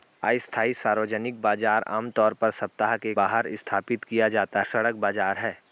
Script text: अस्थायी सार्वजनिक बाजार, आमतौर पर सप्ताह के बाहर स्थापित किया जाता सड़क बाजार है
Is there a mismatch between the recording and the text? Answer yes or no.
no